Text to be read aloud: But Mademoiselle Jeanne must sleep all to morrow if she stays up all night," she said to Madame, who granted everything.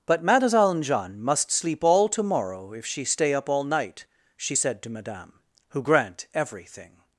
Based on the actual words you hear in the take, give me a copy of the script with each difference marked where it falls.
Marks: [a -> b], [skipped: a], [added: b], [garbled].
But Mademoiselle Jeanne must sleep all to morrow if she [stays -> stay] up all night," she said to Madame, who [granted -> grant] everything.